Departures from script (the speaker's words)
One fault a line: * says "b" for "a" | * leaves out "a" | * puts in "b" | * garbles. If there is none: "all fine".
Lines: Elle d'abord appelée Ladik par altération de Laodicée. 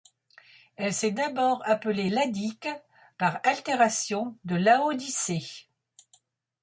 * puts in "s'est"